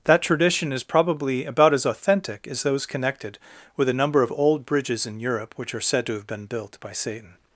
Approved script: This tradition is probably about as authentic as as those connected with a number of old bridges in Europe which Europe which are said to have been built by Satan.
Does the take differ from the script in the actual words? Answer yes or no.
yes